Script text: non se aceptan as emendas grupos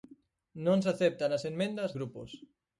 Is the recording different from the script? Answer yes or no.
no